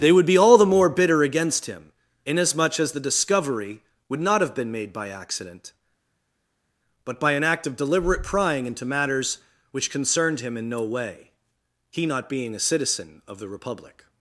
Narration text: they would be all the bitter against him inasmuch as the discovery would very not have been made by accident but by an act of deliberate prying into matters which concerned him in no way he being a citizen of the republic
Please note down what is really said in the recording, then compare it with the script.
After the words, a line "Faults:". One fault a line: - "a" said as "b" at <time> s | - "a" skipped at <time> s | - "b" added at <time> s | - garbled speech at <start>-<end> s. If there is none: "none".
they would be all the more bitter against him inasmuch as the discovery would not have been made by accident but by an act of deliberate prying into matters which concerned him in no way he not being a citizen of the republic
Faults:
- "more" added at 0.7 s
- "very" skipped at 4.2 s
- "not" added at 12.1 s